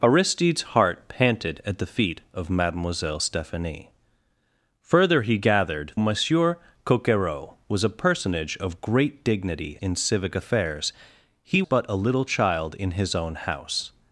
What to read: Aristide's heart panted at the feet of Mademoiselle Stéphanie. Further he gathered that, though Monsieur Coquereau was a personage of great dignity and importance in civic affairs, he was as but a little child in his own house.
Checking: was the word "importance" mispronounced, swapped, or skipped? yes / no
yes